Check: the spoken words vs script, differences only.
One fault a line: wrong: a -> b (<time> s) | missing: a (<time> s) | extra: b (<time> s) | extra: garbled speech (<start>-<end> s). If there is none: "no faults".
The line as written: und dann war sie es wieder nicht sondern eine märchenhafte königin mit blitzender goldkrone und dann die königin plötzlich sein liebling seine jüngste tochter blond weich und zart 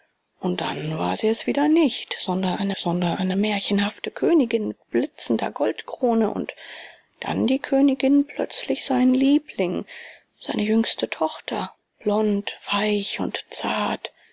extra: sondern eine (2.8 s)